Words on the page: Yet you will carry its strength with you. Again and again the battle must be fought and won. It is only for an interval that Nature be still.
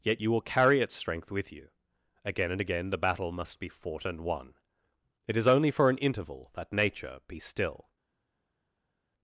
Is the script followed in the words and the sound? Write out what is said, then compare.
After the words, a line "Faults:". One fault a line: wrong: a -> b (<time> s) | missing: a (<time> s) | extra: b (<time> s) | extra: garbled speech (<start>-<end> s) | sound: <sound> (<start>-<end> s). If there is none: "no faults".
Yet you will carry its strength with you. Again and again the battle must be fought and won. It is only for an interval that Nature be still.
Faults:
no faults